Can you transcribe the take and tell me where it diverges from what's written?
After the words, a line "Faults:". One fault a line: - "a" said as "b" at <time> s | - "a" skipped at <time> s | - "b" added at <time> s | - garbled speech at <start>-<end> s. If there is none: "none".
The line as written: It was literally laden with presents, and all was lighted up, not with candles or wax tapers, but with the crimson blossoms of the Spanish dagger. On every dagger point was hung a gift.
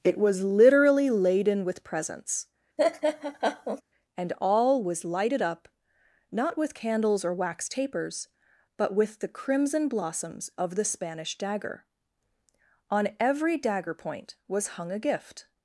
It was literally laden with presents, and all was lighted up, not with candles or wax tapers, but with the crimson blossoms of the Spanish dagger. On every dagger point was hung a gift.
Faults:
none